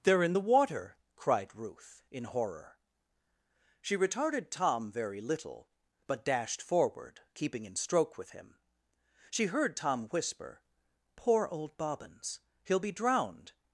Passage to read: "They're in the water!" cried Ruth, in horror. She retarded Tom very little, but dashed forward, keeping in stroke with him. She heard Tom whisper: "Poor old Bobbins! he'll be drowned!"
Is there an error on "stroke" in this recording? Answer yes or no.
no